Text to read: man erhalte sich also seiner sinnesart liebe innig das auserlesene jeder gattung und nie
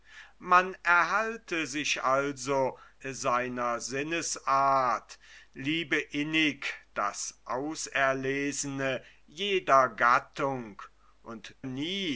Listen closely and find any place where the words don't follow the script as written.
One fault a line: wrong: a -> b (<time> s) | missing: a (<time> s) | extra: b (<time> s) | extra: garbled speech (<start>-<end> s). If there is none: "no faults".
no faults